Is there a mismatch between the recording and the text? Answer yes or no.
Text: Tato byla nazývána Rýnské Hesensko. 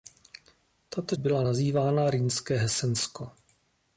no